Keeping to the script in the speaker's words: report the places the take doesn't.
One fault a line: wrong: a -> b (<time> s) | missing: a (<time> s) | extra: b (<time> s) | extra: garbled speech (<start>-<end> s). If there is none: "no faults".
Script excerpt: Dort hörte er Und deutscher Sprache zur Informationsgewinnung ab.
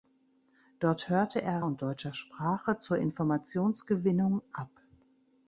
no faults